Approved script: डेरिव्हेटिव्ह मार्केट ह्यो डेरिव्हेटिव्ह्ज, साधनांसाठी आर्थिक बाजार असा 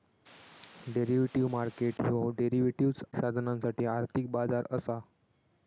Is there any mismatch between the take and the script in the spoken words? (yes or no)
no